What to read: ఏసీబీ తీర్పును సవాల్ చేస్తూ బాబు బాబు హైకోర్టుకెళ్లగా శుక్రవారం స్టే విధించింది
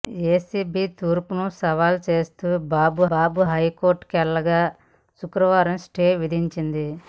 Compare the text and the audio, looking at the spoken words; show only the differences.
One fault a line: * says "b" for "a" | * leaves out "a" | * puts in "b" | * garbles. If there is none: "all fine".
all fine